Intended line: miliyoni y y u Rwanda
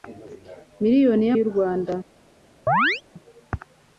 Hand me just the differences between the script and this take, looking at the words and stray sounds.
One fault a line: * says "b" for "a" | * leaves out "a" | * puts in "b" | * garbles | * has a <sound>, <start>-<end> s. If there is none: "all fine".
* has a chirp, 2.7-3.0 s